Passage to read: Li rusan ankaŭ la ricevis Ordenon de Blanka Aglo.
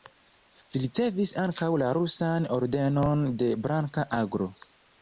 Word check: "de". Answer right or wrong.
right